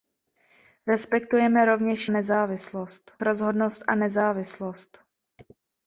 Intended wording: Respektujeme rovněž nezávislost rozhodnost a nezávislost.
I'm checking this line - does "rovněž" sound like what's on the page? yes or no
yes